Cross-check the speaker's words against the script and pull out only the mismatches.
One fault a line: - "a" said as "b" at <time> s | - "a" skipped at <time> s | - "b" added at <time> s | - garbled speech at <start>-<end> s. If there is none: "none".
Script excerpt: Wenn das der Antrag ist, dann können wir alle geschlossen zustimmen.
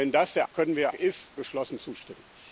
- "Antrag ist dann" skipped at 0.5 s
- "alle" said as "ist" at 0.9 s